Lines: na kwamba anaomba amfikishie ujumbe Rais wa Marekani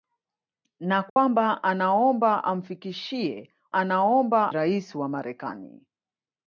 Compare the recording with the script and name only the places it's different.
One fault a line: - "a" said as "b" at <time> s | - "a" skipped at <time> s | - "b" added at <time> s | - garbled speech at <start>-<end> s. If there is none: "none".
- "ujumbe" said as "anaomba" at 3.7 s